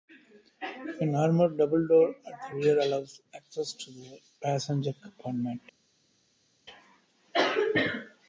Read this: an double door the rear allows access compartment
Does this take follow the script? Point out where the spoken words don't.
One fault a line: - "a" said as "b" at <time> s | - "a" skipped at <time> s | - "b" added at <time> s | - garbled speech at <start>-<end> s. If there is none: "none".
- "armoured" added at 1.1 s
- "at" added at 2.2 s
- "to the passenger" added at 3.7 s